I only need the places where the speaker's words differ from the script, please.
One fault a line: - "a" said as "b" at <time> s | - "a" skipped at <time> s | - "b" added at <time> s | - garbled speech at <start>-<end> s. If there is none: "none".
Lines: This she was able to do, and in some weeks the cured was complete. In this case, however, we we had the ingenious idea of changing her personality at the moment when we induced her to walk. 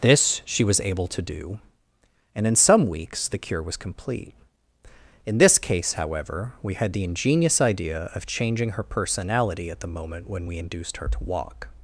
- "cured" said as "cure" at 3.4 s
- "we" skipped at 6.7 s